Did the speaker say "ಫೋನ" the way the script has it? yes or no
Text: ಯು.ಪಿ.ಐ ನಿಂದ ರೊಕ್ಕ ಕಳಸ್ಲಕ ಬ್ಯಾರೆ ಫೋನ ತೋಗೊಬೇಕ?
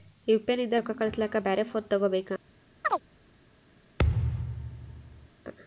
yes